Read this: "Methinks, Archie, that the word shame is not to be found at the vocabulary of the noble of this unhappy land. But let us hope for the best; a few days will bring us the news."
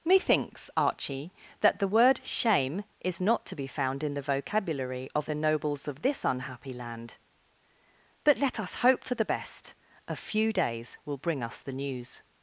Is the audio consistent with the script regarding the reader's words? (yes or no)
no